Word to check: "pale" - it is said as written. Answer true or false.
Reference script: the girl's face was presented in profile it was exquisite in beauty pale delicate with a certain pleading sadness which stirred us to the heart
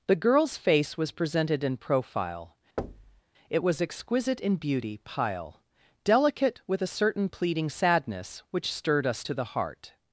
false